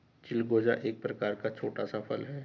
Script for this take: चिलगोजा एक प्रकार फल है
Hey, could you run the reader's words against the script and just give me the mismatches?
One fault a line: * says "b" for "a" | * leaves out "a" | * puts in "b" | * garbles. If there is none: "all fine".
* puts in "का छोटा सा"